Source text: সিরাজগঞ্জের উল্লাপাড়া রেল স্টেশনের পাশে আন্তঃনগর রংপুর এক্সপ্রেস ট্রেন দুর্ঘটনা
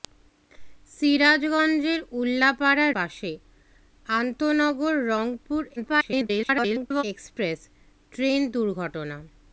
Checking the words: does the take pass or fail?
fail